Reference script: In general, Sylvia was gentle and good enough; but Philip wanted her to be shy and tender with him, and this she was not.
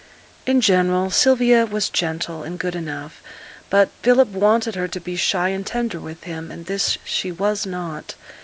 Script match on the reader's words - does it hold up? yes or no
yes